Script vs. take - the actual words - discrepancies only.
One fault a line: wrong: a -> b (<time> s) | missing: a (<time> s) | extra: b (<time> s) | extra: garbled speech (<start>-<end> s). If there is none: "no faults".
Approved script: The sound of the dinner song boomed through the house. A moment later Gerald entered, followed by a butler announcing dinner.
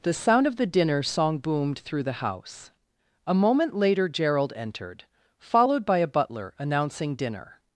no faults